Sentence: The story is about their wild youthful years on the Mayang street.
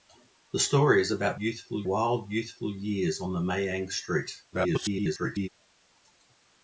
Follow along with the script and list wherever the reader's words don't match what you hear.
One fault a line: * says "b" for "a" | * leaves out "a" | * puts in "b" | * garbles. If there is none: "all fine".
* says "youthful" for "their"
* garbles